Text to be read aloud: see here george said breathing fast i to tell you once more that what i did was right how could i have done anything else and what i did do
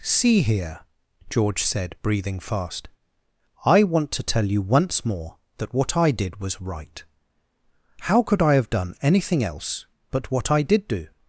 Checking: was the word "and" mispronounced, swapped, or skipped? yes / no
yes